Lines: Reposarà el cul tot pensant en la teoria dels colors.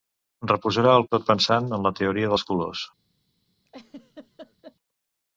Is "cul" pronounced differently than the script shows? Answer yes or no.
yes